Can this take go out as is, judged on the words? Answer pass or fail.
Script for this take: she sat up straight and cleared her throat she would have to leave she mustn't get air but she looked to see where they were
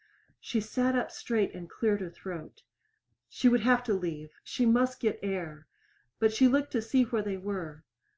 fail